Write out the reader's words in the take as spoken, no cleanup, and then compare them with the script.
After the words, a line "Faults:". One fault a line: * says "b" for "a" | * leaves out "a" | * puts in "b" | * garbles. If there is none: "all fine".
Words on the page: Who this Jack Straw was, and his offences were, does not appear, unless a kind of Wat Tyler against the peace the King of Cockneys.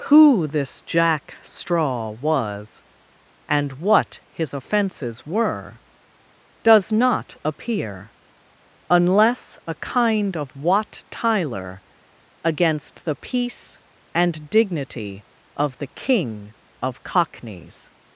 Who this Jack Straw was, and what his offences were, does not appear, unless a kind of Wat Tyler against the peace and dignity of the King of Cockneys.
Faults:
* puts in "what"
* puts in "and dignity of"